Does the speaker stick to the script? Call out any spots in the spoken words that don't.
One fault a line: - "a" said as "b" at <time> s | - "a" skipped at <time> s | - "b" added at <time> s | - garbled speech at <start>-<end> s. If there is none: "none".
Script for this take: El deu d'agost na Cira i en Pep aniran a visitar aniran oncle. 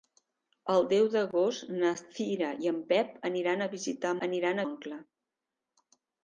none